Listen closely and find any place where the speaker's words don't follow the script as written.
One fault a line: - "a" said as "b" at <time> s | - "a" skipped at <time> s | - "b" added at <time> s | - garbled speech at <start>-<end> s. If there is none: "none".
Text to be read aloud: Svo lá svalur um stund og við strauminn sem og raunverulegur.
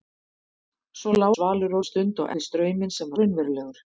none